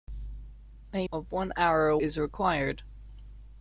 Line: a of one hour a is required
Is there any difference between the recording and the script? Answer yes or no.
no